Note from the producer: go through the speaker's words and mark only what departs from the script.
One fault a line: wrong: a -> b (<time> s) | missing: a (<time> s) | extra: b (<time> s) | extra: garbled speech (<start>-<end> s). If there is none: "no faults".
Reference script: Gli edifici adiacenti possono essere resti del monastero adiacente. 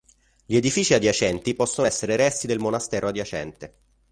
no faults